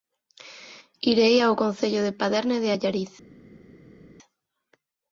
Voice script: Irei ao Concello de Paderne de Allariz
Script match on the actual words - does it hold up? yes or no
yes